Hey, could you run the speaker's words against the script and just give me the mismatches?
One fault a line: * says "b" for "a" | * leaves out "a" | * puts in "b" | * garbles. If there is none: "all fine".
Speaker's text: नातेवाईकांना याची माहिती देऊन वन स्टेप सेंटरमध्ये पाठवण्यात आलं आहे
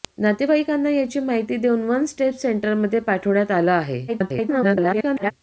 * garbles